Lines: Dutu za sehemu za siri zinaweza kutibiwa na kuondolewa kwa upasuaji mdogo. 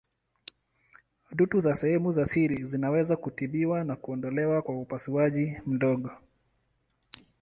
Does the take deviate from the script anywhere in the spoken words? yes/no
no